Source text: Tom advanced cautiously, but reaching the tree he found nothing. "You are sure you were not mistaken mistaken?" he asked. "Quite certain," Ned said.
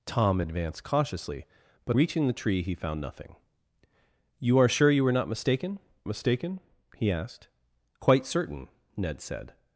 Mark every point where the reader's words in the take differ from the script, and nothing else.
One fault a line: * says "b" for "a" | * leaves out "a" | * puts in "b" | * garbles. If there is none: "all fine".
all fine